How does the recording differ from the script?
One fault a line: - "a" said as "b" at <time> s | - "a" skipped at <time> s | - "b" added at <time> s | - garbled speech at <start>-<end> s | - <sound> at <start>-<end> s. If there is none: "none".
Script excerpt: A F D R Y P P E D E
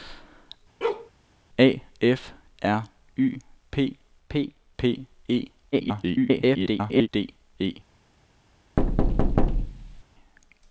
- bark at 0.8-1.1 s
- "D" skipped at 2.3 s
- "P" added at 4.8 s
- garbled speech at 5.7-7.1 s
- thud at 8.8-10.0 s